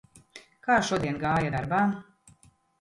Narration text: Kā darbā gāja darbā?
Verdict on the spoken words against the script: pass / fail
fail